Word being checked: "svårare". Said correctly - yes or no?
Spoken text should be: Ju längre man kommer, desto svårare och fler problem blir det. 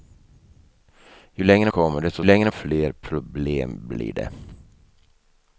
no